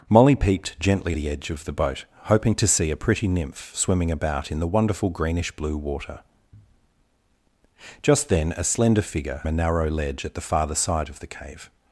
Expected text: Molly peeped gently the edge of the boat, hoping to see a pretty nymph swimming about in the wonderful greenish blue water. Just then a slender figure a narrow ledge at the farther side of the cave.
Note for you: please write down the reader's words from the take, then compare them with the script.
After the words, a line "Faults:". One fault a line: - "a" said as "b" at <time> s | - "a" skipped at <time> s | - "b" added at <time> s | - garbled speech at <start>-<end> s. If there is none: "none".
Molly peeped gently the edge of the boat, hoping to see a pretty nymph swimming about in the wonderful greenish blue water. Just then a slender figure a narrow ledge at the farther side of the cave.
Faults:
none